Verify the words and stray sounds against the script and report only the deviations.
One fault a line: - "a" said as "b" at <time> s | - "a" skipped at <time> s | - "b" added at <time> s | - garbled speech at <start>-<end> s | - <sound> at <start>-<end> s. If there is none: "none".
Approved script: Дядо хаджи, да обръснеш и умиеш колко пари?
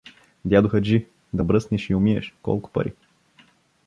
none